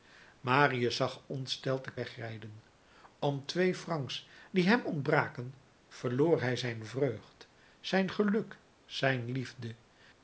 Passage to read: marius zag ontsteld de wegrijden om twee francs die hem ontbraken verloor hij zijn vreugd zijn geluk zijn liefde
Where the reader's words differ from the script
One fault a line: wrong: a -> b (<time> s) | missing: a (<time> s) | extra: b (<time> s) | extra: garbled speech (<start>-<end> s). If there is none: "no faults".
no faults